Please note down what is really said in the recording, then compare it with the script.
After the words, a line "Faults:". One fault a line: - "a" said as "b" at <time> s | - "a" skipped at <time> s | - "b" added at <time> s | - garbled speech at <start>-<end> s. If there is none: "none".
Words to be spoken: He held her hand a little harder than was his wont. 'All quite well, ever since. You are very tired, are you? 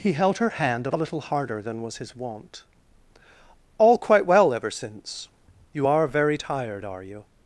He held her hand a little harder than was his wont. 'All quite well, ever since. You are very tired, are you?
Faults:
none